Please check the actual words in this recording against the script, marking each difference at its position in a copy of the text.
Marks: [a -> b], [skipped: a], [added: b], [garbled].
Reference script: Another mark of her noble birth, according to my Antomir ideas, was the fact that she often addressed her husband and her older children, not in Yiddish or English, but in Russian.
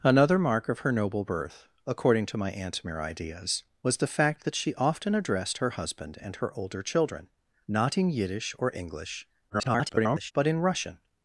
Another mark of her noble birth, according to my Antomir ideas, was the fact that she often addressed her husband and her older children, not in Yiddish or English, [garbled] but in Russian.